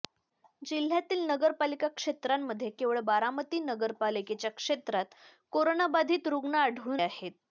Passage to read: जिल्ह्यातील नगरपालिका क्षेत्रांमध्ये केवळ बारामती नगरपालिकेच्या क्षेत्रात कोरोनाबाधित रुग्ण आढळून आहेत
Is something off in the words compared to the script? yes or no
no